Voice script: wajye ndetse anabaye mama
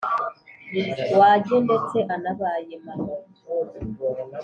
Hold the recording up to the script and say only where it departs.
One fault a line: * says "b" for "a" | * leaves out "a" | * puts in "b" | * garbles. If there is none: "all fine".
all fine